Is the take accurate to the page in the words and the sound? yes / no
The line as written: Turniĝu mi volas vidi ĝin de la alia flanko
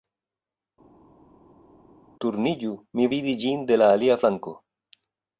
no